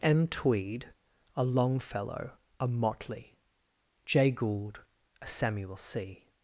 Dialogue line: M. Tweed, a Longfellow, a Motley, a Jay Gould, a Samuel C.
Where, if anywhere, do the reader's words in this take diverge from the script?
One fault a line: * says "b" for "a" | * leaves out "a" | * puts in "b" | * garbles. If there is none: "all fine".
* leaves out "a"